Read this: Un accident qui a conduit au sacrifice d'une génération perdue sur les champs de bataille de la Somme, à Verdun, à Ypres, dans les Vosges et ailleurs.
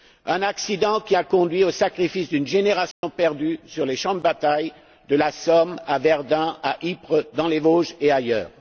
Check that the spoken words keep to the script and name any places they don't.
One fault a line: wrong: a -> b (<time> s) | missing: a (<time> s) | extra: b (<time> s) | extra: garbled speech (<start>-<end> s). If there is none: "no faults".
no faults